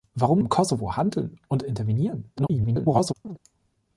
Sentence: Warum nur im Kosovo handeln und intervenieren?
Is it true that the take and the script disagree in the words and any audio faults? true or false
true